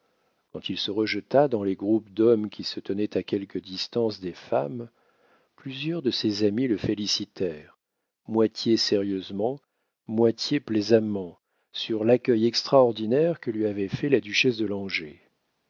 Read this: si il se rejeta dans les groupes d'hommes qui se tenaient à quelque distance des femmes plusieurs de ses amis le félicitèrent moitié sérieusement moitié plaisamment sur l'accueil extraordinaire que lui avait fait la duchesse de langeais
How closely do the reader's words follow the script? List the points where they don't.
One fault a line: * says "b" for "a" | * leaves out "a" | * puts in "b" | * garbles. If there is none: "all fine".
* says "quand" for "si"